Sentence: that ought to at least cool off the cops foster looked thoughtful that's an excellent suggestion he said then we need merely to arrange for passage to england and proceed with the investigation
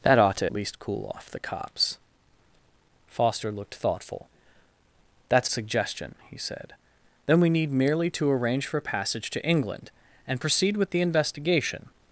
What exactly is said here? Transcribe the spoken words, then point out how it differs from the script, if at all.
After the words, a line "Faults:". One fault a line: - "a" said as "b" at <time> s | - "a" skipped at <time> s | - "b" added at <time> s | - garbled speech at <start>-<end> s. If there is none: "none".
that ought to least cool off the cops foster looked thoughtful that's suggestion he said then we need merely to arrange for passage to england and proceed with the investigation
Faults:
- "at" skipped at 0.5 s
- "an excellent" skipped at 5.5 s